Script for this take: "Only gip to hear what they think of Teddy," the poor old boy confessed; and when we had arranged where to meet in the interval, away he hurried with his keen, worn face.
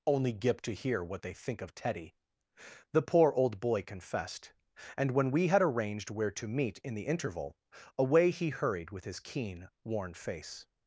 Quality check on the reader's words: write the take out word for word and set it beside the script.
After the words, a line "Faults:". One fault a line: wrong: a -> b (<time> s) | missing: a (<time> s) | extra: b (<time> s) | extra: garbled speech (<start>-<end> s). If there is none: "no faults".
"Only gip to hear what they think of Teddy," the poor old boy confessed; and when we had arranged where to meet in the interval, away he hurried with his keen, worn face.
Faults:
no faults